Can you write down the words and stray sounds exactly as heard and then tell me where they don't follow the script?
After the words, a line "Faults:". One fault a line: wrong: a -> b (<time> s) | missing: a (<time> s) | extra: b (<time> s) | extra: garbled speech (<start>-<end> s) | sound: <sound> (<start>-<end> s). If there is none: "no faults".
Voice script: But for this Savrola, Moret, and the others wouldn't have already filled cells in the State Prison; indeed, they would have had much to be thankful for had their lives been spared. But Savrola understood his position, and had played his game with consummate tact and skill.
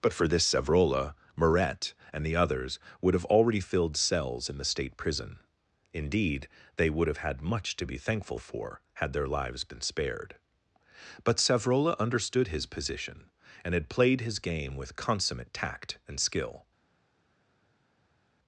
But for this Savrola, Moret, and the others would have already filled cells in the State Prison; indeed, they would have had much to be thankful for had their lives been spared. But Savrola understood his position, and had played his game with consummate tact and skill.
Faults:
wrong: wouldn't -> would (3.0 s)